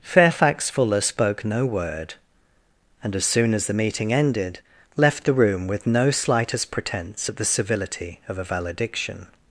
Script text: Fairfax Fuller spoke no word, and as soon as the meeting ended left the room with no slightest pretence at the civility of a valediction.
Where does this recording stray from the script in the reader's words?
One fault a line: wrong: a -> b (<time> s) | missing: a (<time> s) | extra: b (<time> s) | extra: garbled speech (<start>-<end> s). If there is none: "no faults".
no faults